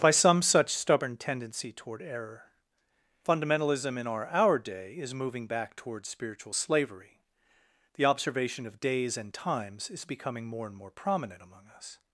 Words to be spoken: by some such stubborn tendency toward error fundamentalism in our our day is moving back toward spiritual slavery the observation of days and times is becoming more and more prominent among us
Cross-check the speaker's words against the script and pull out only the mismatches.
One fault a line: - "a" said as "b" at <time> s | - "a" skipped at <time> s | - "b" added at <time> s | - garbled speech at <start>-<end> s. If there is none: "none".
none